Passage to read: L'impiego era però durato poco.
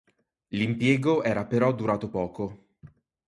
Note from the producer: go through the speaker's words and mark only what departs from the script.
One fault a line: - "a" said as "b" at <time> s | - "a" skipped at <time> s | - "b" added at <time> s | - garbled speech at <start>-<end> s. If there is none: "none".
none